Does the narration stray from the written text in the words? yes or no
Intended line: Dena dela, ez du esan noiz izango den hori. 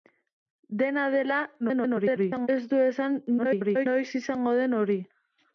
yes